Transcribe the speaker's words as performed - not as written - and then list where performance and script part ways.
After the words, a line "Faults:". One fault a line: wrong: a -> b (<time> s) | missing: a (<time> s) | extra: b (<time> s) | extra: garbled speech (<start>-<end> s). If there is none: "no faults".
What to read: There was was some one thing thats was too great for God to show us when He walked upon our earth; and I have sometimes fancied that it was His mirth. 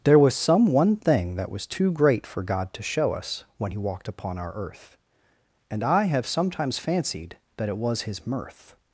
There was some one thing that was too great for God to show us when He walked upon our earth; and I have sometimes fancied that it was His mirth.
Faults:
missing: was (0.3 s)
wrong: thats -> that (1.4 s)